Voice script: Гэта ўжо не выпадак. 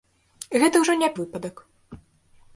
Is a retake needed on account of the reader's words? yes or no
no